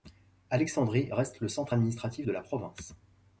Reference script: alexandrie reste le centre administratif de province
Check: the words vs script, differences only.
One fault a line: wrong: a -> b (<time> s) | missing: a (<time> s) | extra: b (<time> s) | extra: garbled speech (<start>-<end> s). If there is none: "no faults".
extra: la (2.3 s)